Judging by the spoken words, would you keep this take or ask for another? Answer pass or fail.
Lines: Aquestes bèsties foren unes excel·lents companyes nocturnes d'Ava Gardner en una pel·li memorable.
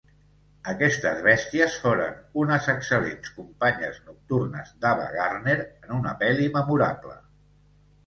pass